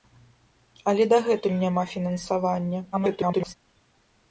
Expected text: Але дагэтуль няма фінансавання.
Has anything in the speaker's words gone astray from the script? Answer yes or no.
yes